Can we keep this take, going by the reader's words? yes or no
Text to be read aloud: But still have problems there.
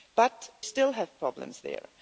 yes